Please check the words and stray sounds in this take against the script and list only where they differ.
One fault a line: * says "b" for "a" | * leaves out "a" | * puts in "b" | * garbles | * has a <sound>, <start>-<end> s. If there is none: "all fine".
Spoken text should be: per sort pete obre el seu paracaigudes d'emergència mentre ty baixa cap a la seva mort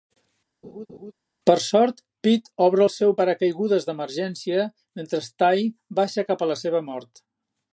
* has a laugh, 0.6-1.1 s